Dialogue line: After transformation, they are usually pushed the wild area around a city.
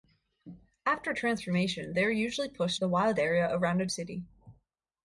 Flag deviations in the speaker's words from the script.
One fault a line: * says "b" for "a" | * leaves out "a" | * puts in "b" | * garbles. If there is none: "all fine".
all fine